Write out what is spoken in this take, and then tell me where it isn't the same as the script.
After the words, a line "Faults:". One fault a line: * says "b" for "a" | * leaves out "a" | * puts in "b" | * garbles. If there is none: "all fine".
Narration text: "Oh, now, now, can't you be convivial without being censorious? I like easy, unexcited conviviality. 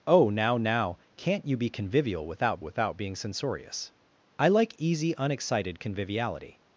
"Oh, now, now, can't you be convivial without without being censorious? I like easy, unexcited conviviality.
Faults:
* puts in "without"